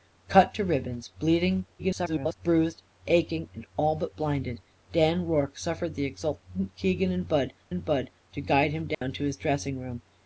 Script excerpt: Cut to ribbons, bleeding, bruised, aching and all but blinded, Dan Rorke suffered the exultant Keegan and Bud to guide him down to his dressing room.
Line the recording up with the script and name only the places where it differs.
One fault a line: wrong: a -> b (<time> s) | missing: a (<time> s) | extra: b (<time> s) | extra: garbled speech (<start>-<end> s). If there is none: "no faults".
extra: garbled speech (1.8-2.3 s)
extra: and Bud (7.7 s)